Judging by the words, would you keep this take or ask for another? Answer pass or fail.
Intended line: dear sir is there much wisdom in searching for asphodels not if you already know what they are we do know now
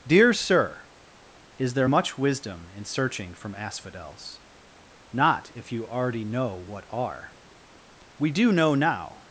fail